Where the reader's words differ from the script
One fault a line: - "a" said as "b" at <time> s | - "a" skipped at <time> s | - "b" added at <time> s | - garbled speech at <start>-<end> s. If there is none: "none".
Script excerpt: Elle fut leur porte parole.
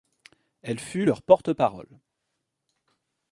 none